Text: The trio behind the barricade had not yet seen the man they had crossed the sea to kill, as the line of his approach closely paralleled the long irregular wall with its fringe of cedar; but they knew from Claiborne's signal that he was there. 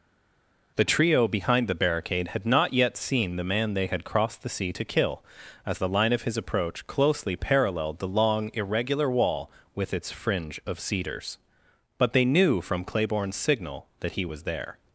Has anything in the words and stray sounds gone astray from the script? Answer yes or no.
yes